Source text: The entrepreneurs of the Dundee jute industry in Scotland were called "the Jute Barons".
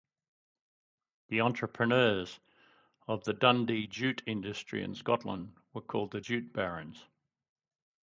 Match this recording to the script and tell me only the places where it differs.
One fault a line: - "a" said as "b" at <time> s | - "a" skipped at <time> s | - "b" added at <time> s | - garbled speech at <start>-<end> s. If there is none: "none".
none